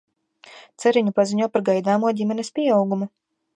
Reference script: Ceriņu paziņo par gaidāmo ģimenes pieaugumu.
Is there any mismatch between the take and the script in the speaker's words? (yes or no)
no